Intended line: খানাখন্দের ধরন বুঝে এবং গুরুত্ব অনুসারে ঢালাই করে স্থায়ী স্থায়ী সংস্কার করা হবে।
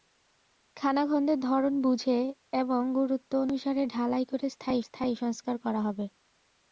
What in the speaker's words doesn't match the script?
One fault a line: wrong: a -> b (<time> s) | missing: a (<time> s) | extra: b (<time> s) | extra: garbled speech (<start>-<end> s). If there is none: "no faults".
no faults